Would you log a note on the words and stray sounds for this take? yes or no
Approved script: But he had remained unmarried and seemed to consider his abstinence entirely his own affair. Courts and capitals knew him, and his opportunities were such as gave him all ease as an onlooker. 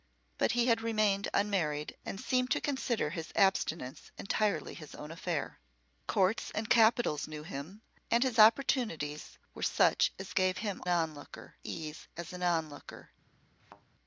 yes